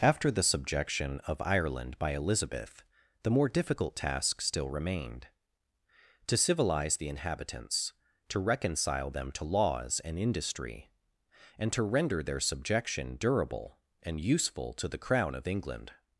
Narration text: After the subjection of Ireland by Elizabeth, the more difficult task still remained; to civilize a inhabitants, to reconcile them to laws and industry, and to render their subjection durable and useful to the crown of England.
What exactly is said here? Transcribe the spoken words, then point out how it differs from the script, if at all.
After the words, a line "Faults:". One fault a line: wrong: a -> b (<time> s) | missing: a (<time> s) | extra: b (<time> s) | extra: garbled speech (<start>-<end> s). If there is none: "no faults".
After the subjection of Ireland by Elizabeth, the more difficult task still remained; to civilize the inhabitants, to reconcile them to laws and industry, and to render their subjection durable and useful to the crown of England.
Faults:
wrong: a -> the (7.0 s)